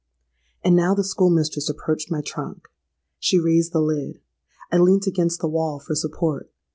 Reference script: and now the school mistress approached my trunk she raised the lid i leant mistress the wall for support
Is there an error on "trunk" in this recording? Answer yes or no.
no